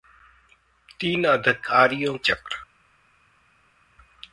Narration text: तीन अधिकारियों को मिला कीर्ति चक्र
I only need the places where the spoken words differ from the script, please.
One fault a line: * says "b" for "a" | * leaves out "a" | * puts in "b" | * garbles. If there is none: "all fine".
* leaves out "को मिला कीर्ति"